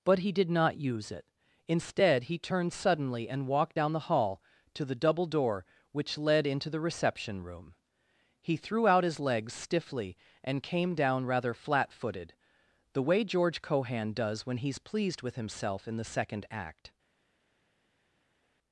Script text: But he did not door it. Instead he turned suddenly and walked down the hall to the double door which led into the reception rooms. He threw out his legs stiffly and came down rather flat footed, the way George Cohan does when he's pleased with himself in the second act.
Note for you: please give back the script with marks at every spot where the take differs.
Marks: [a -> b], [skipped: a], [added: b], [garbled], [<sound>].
But he did not [door -> use] it. Instead he turned suddenly and walked down the hall to the double door which led into the reception [rooms. -> room] He threw out his legs stiffly and came down rather flat footed, the way George Cohan does when he's pleased with himself in the second act.